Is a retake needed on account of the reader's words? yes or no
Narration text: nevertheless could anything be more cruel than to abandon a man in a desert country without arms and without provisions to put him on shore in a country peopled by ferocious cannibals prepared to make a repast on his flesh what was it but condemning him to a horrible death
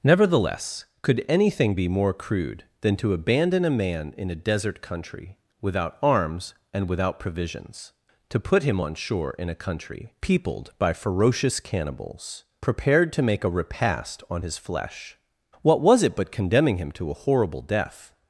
yes